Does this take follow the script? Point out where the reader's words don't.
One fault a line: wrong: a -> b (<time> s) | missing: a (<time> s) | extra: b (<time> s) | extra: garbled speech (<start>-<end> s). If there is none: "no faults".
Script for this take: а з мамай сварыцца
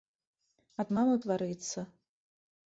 no faults